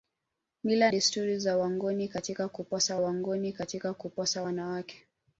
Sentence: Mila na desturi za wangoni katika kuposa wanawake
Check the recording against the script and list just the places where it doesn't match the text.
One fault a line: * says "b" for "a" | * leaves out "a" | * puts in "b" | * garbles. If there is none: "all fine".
* leaves out "na"
* puts in "wangoni katika kuposa"